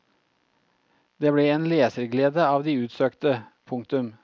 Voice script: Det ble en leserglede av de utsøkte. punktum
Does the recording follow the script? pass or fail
pass